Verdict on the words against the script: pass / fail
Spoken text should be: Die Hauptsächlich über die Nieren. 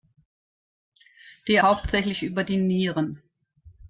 pass